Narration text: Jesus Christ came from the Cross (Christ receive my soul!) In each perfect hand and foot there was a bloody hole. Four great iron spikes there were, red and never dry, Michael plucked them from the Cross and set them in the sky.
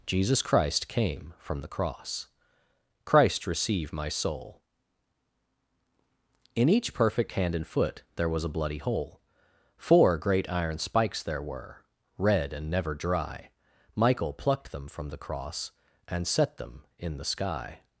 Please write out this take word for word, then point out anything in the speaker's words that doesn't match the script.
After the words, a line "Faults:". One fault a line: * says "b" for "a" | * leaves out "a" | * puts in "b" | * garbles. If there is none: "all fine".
Jesus Christ came from the Cross (Christ receive my soul!) In each perfect hand and foot there was a bloody hole. Four great iron spikes there were, red and never dry, Michael plucked them from the Cross and set them in the sky.
Faults:
all fine